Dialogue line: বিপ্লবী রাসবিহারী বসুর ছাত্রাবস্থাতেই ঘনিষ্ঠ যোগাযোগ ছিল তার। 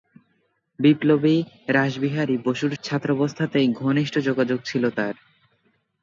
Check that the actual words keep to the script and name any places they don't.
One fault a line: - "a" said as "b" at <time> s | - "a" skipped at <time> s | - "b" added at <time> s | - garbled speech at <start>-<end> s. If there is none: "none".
none